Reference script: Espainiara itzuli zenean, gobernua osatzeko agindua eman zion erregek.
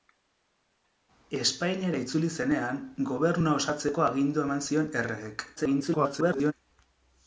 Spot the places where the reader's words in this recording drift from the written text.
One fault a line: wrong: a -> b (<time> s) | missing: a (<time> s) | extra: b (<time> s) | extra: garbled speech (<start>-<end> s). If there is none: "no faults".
extra: garbled speech (5.6-6.5 s)